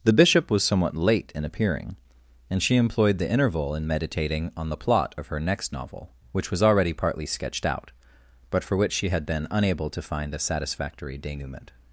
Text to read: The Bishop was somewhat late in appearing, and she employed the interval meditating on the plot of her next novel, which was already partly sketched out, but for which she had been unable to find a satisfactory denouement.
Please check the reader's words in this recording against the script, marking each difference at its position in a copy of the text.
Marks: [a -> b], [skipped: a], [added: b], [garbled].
The Bishop was somewhat late in appearing, and she employed the interval [added: in] meditating on the plot of her next novel, which was already partly sketched out, but for which she had been unable to find a satisfactory denouement.